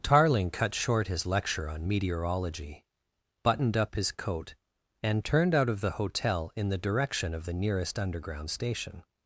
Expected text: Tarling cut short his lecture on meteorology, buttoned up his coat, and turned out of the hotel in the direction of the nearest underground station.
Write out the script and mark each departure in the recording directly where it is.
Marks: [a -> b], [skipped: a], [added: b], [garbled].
Tarling cut short his lecture on meteorology, buttoned up his coat, and turned out of the hotel in the direction of the nearest underground station.